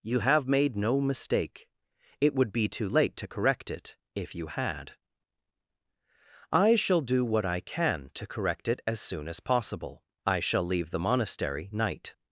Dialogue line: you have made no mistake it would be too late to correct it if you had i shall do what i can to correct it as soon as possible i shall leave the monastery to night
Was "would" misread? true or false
false